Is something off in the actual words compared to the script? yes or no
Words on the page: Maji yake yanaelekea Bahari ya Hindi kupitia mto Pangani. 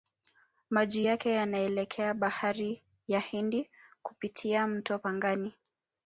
no